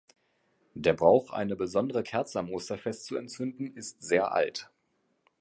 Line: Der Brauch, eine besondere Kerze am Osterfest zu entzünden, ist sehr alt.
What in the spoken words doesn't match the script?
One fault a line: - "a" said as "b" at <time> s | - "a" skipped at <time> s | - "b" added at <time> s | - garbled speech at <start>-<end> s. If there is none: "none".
none